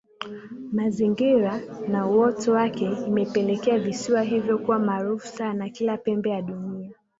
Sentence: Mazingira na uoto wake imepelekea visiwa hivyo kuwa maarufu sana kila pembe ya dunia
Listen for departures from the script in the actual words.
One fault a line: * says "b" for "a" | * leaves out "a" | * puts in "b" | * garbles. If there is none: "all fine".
all fine